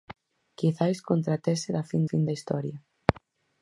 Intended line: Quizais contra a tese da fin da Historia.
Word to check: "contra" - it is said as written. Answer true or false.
true